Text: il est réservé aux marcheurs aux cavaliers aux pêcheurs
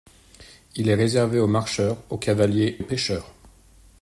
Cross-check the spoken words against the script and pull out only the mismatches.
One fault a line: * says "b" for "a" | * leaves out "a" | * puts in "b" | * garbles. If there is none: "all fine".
all fine